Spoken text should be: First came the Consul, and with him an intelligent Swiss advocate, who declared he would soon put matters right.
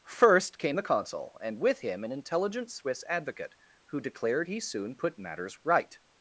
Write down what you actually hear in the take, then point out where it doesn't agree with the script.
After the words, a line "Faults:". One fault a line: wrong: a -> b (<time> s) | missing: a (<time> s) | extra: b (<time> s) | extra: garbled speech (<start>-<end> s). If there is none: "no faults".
First came the Consul, and with him an intelligent Swiss advocate, who declared he soon put matters right.
Faults:
missing: would (4.6 s)